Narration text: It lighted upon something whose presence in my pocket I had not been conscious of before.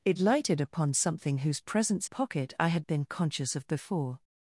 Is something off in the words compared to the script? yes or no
yes